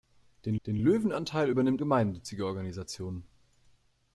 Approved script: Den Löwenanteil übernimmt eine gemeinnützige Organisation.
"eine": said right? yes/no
no